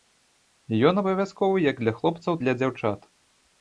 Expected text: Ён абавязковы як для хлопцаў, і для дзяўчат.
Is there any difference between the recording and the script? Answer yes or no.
no